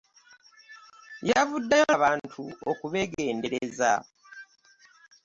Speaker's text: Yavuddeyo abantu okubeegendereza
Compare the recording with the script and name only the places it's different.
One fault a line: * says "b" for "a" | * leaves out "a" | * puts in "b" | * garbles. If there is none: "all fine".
all fine